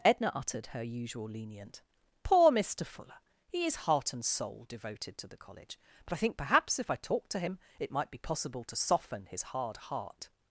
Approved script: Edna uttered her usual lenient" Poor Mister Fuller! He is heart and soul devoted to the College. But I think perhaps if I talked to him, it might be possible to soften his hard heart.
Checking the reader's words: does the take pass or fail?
pass